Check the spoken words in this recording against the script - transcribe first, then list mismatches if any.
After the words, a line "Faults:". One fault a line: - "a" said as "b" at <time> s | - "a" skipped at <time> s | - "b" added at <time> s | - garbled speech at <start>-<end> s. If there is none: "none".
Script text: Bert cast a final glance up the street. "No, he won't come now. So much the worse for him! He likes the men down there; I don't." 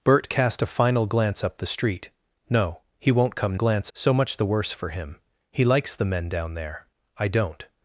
Bert cast a final glance up the street. "No, he won't come glance. So much the worse for him! He likes the men down there; I don't."
Faults:
- "now" said as "glance" at 3.5 s